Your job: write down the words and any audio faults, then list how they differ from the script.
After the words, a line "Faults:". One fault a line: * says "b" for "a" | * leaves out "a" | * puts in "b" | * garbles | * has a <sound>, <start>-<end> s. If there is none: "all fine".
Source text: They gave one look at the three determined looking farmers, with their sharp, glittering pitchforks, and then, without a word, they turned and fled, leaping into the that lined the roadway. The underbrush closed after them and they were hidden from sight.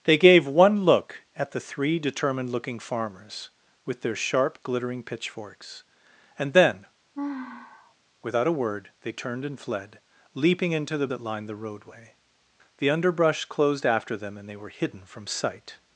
They gave one look at the three determined looking farmers, with their sharp, glittering pitchforks, and then, without a word, they turned and fled, leaping into the that lined the roadway. The underbrush closed after them and they were hidden from sight.
Faults:
* has a sigh, 7.1-7.9 s